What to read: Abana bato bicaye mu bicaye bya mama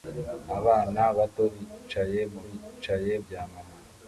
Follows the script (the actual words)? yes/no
yes